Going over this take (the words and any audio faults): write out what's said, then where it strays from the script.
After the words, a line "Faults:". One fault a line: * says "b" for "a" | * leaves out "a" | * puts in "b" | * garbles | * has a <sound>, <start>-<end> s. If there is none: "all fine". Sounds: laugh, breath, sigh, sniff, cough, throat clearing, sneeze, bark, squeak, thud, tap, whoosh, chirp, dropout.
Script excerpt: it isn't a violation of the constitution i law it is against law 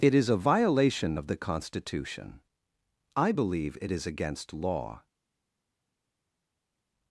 it is a violation of the constitution i believe it is against law
Faults:
* says "is" for "isn't"
* says "believe" for "law"